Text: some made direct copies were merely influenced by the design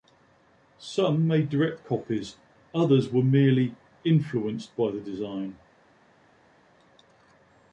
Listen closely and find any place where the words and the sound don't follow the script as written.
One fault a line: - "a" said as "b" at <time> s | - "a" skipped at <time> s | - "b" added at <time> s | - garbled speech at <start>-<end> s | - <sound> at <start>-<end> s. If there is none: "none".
- "others" added at 2.7 s